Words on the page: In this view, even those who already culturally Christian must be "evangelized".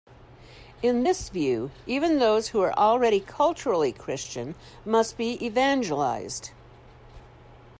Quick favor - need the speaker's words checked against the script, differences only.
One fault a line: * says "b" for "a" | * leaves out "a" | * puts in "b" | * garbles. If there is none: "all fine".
* puts in "are"